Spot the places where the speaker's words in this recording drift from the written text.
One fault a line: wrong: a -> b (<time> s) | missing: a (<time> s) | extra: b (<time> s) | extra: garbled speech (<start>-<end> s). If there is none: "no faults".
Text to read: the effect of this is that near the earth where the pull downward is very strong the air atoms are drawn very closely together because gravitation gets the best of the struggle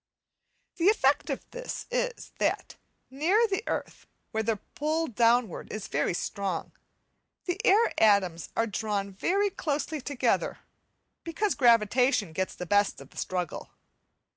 no faults